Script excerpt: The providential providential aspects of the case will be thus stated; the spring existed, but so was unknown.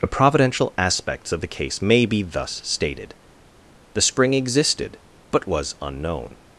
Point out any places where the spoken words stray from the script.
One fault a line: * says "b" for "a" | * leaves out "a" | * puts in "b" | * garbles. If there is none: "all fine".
* leaves out "providential"
* says "may" for "will"
* leaves out "so"